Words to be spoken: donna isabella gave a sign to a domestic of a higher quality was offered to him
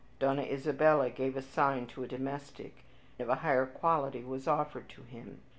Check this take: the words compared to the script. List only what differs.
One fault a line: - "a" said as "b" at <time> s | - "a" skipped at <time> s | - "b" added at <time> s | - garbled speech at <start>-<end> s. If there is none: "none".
none